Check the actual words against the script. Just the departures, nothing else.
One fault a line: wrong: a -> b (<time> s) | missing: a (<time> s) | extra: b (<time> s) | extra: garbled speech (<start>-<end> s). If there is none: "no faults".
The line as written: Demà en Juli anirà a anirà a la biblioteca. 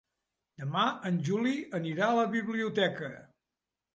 missing: anirà a (2.2 s)